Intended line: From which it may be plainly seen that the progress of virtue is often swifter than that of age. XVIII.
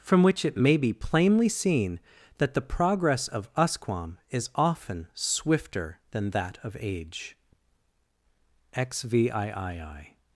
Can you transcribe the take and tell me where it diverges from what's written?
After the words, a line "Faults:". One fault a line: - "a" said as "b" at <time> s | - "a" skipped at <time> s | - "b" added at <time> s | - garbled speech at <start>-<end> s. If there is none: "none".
From which it may be plainly seen that the progress of usquam is often swifter than that of age. XVIII.
Faults:
- "virtue" said as "usquam" at 3.5 s